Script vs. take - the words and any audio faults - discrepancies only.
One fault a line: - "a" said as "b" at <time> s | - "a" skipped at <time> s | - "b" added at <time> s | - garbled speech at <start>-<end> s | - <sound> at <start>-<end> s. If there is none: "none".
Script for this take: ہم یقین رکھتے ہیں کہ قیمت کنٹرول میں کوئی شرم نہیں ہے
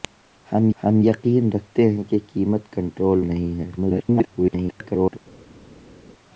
- "ہم" added at 0.8 s
- "میں کوئی شرم" skipped at 3.2 s
- garbled speech at 3.8-5.2 s